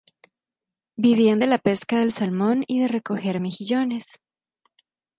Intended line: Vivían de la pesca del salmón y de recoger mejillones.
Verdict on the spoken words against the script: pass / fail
pass